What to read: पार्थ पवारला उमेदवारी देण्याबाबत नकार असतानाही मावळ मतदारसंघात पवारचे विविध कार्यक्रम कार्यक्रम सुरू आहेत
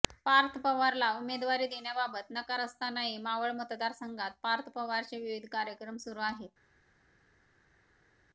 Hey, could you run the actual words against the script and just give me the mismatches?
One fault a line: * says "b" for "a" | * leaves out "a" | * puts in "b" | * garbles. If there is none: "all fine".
* puts in "पार्थ"
* leaves out "कार्यक्रम"